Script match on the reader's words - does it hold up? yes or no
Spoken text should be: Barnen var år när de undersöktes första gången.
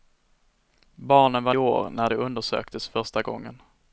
yes